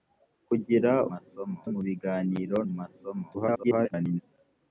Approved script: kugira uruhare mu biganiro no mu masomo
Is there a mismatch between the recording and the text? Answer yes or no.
yes